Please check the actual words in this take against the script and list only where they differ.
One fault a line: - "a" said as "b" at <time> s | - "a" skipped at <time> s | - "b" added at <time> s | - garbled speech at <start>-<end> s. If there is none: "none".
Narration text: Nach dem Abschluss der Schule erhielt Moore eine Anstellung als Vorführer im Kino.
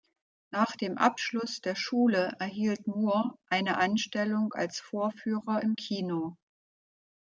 none